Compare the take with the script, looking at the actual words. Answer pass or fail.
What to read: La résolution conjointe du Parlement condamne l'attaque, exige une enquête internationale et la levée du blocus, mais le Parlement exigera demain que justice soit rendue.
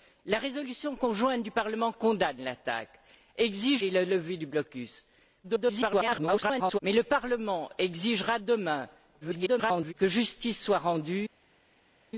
fail